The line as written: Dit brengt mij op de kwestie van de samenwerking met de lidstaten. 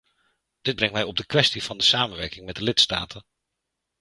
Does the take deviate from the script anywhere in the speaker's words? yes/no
no